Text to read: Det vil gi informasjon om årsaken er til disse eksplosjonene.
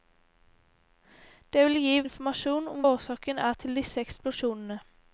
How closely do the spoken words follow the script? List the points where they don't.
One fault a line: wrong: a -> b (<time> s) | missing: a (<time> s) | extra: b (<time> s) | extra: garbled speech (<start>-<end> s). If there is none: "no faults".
no faults